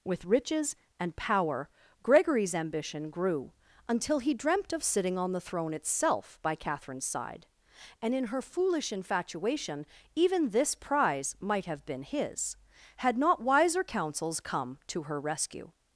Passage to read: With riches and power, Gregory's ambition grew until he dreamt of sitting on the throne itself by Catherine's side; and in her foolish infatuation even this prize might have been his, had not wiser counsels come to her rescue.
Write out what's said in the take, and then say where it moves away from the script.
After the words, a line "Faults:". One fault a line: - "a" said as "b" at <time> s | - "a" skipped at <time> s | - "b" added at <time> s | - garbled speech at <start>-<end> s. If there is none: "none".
With riches and power, Gregory's ambition grew until he dreamt of sitting on the throne itself by Catherine's side; and in her foolish infatuation even this prize might have been his, had not wiser counsels come to her rescue.
Faults:
none